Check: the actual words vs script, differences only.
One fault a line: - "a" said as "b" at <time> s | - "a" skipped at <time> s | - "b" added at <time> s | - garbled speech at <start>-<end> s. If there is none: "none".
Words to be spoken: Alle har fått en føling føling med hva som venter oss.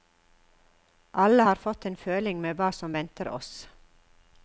- "føling" skipped at 2.4 s